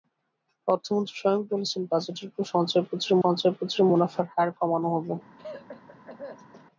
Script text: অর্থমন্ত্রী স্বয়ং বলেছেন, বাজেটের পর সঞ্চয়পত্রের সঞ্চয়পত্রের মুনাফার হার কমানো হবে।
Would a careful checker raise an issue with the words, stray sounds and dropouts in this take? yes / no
yes